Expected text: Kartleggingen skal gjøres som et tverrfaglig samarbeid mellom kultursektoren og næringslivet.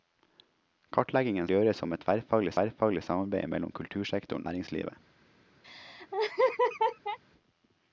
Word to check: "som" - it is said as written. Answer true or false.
true